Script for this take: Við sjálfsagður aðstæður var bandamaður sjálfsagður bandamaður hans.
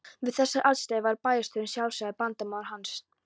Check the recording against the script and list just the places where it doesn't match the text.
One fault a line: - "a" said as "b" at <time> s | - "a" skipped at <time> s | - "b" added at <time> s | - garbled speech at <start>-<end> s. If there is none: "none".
- "sjálfsagður" said as "þessar" at 0.4 s
- "bandamaður" said as "bæjarstjórinn" at 1.3 s